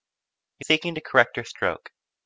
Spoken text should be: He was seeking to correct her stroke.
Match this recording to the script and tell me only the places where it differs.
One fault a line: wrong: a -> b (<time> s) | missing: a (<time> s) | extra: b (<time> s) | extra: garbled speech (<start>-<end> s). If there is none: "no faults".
missing: was (0.7 s)